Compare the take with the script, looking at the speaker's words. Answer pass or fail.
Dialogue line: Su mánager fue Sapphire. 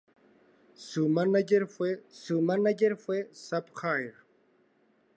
fail